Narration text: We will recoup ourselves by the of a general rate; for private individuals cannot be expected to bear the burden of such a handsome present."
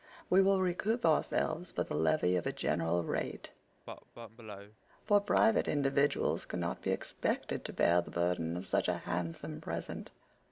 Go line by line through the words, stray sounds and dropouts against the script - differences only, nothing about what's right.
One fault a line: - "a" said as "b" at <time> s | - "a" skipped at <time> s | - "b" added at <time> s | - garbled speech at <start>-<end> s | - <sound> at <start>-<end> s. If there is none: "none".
- "levy" added at 1.9 s
- cough at 3.9-4.8 s